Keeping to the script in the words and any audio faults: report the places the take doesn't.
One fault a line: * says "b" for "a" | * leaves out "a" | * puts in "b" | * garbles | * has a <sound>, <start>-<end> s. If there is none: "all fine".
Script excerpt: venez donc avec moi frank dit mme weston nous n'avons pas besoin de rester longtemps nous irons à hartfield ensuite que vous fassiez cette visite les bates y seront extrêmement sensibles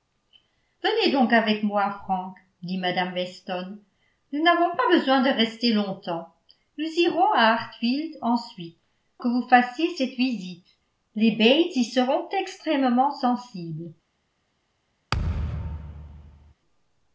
* has a thud, 15.1-16.5 s